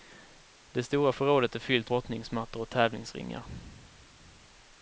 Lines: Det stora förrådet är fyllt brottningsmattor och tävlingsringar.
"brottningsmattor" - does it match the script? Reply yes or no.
yes